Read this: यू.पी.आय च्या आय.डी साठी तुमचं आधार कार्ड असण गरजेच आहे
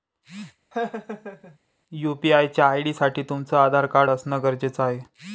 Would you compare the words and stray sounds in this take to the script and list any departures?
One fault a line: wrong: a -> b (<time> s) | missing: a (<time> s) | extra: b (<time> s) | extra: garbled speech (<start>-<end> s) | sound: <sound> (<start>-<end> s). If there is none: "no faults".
sound: laugh (0.7-1.6 s)